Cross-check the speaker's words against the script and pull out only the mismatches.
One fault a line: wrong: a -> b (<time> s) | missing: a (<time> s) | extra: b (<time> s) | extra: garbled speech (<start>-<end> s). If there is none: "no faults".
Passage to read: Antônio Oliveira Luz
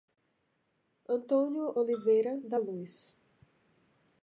extra: da (2.4 s)